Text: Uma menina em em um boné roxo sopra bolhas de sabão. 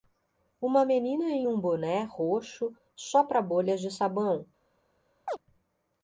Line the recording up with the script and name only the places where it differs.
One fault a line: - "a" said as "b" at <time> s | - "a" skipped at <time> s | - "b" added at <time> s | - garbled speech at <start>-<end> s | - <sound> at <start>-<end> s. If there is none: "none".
- "em" skipped at 1.5 s
- chirp at 5.3-5.4 s